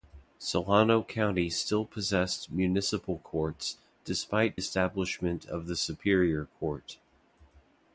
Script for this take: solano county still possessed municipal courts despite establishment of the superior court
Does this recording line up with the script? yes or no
yes